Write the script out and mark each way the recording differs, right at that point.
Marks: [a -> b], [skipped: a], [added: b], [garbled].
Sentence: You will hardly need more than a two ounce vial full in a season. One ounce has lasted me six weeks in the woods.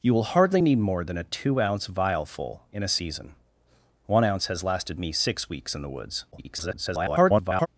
You will hardly need more than a two ounce vial full in a season. One ounce has lasted me six weeks in the woods. [garbled]